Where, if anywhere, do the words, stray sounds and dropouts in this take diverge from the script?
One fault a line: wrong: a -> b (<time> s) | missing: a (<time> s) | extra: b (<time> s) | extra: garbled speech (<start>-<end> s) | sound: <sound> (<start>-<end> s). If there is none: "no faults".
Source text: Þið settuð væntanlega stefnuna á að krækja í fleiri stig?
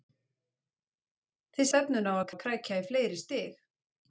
missing: settuð væntanlega (1.7 s)
extra: að (2.3 s)